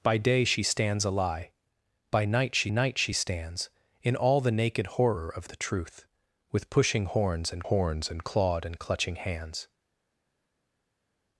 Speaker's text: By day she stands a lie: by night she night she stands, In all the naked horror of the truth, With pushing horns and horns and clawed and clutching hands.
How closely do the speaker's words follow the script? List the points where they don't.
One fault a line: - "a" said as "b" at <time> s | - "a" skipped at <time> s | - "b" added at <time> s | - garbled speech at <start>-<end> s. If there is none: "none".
none